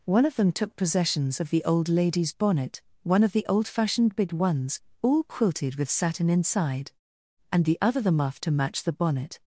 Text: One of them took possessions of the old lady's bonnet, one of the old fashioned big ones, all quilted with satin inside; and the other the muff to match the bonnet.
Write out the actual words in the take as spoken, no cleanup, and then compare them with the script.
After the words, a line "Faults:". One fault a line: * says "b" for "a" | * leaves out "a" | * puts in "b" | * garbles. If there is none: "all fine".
One of them took possessions of the old lady's bonnet, one of the old fashioned big ones, all quilted with satin inside; and the other the muff to match the bonnet.
Faults:
all fine